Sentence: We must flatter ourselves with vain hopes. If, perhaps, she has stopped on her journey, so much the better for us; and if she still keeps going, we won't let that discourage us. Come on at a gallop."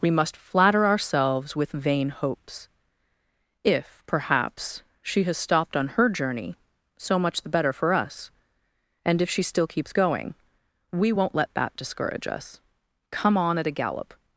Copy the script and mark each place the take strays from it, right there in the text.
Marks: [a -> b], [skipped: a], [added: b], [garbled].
We must flatter ourselves with vain hopes. If, perhaps, she has stopped on her journey, so much the better for us; and if she still keeps going, we won't let that discourage us. Come on at a gallop."